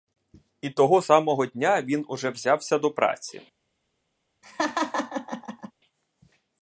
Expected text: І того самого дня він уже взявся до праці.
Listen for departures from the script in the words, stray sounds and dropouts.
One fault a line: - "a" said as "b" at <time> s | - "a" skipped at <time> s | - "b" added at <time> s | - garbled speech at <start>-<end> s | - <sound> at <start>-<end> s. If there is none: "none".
- laugh at 4.4-5.7 s